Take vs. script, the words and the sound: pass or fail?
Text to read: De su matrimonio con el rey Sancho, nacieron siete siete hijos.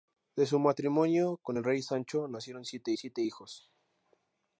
pass